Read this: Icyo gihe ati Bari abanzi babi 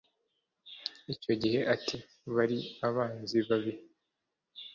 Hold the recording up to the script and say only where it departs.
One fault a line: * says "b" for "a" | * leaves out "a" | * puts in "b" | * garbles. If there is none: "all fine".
all fine